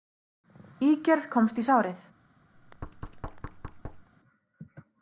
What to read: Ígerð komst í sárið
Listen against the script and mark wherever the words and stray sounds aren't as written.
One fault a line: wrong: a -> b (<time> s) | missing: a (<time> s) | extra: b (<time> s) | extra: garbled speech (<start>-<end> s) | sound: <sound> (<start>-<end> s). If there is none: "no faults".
sound: thud (2.5-4.1 s)